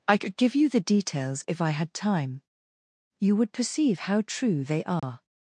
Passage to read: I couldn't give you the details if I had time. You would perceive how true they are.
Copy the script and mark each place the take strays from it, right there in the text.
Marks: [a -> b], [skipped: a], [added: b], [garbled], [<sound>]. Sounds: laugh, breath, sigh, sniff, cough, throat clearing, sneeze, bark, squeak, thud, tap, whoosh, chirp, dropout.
I [couldn't -> could] give you the details if I had time. You would perceive how true they are. [dropout]